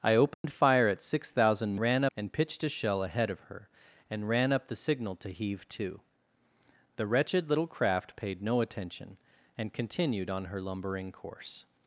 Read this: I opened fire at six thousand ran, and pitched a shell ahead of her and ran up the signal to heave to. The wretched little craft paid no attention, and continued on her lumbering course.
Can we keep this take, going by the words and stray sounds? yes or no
no